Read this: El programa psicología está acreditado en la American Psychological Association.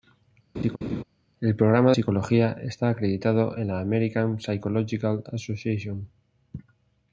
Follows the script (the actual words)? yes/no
yes